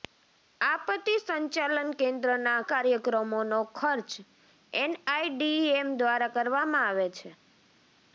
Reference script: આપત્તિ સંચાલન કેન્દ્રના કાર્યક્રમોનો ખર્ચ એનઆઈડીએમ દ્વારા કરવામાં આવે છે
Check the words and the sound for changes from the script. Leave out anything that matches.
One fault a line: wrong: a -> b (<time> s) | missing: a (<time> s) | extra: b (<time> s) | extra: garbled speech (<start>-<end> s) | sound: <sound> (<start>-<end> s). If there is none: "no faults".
no faults